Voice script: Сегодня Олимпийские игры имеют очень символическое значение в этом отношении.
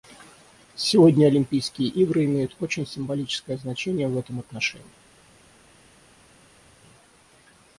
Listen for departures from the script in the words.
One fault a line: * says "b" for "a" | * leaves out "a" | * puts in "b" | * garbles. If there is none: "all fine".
all fine